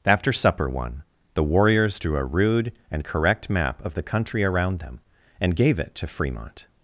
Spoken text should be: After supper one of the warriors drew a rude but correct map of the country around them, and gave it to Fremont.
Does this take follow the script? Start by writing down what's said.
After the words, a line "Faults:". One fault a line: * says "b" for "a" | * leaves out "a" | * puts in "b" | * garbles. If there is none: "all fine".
After supper one the warriors drew a rude and correct map of the country around them, and gave it to Fremont.
Faults:
* leaves out "of"
* says "and" for "but"